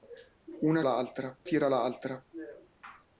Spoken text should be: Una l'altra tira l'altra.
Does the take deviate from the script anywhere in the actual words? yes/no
no